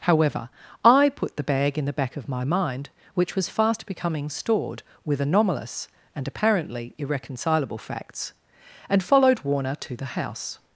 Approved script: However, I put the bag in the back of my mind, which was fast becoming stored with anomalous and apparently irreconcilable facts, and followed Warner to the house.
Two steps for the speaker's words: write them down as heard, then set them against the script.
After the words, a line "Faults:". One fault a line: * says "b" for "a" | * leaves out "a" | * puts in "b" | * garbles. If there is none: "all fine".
However, I put the bag in the back of my mind, which was fast becoming stored with anomalous and apparently irreconcilable facts, and followed Warner to the house.
Faults:
all fine